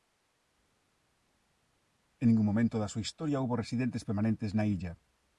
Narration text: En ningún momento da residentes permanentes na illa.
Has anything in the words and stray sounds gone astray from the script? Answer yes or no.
yes